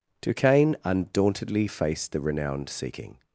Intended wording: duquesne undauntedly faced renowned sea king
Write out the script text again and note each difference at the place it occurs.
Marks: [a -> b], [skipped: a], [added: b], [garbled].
duquesne undauntedly faced [added: the] renowned sea king